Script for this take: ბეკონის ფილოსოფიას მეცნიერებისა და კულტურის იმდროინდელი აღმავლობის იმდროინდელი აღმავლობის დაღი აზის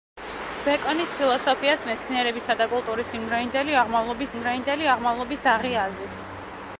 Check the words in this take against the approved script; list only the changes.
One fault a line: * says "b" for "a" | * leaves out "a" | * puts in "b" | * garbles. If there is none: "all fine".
all fine